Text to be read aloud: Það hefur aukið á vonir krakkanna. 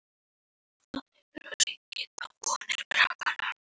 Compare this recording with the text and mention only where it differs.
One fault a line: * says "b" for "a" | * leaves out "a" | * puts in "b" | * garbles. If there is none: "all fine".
all fine